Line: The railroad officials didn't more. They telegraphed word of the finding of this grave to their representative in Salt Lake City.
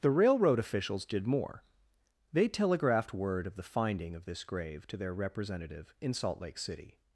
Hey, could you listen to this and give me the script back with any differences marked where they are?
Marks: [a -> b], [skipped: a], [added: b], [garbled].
The railroad officials [didn't -> did] more. They telegraphed word of the finding of this grave to their representative in Salt Lake City.